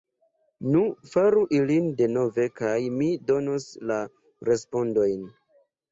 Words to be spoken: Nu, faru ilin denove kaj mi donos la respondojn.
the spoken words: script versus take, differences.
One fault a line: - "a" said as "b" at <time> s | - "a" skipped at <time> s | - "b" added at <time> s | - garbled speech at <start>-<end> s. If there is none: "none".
none